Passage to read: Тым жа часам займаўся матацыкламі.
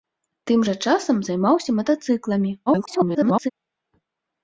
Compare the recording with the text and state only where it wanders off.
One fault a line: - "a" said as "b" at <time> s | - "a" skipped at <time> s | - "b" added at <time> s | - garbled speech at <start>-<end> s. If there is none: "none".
- garbled speech at 2.7-3.5 s